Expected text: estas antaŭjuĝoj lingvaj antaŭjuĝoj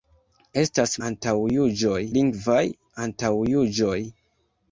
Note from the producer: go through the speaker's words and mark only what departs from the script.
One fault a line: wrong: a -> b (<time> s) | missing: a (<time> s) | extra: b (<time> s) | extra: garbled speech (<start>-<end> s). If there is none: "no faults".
no faults